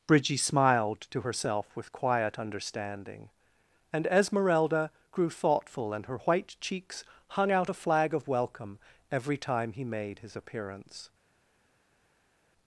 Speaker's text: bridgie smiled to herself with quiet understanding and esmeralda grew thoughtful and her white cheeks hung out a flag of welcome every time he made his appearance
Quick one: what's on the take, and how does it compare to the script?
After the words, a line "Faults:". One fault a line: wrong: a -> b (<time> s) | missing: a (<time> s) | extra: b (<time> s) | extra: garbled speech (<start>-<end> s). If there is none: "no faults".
bridgie smiled to herself with quiet understanding and esmeralda grew thoughtful and her white cheeks hung out a flag of welcome every time he made his appearance
Faults:
no faults